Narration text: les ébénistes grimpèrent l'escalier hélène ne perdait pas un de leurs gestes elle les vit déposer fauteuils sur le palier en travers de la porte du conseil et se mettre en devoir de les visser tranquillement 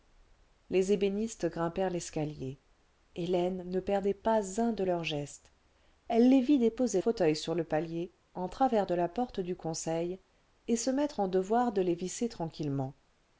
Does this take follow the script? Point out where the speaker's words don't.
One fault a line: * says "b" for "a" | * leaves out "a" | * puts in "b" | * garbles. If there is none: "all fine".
all fine